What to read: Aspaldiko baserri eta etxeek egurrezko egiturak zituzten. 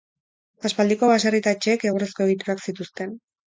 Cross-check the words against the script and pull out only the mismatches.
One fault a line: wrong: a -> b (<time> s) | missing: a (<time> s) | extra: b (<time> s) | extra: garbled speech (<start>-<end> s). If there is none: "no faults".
no faults